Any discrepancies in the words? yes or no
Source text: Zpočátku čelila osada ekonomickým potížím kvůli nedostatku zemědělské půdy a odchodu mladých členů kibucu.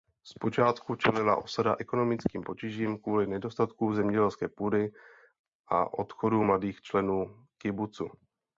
no